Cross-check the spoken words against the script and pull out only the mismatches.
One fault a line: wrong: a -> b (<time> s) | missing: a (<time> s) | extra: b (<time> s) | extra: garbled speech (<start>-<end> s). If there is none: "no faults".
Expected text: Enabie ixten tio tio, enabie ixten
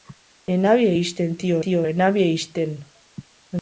no faults